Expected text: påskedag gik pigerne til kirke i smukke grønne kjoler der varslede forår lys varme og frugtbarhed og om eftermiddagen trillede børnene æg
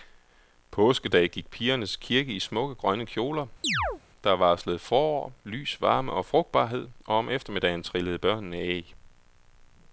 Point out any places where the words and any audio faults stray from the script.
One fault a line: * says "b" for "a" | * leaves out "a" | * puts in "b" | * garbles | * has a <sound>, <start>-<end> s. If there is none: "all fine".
* has a chirp, 3.6-4.0 s